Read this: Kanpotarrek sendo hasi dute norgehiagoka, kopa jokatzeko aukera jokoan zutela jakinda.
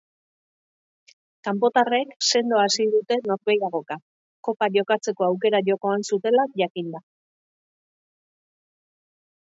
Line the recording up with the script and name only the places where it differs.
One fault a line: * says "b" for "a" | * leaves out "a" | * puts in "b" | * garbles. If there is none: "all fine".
all fine